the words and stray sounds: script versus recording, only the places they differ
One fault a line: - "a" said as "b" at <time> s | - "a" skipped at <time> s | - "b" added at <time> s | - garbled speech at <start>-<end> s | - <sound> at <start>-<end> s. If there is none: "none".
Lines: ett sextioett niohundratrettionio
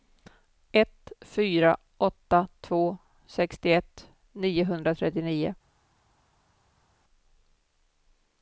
- "fyra åtta två" added at 1.2 s